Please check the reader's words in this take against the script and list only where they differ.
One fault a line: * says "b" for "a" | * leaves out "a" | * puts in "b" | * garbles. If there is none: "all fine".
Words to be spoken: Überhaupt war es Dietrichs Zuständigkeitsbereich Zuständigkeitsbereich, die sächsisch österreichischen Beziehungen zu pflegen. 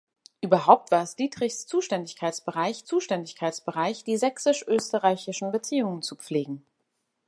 all fine